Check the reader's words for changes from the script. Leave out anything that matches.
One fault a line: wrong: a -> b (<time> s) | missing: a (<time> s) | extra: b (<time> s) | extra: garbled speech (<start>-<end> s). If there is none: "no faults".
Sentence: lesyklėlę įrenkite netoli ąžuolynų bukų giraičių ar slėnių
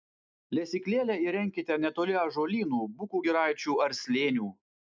no faults